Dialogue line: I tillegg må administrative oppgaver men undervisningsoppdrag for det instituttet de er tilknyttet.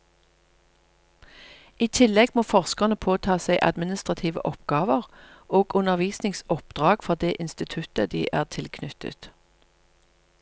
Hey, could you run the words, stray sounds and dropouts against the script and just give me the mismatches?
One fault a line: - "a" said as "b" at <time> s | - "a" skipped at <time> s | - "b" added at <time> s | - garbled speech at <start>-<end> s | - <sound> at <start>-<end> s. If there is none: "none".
- "forskerne påta seg" added at 2.5 s
- "men" said as "og" at 5.6 s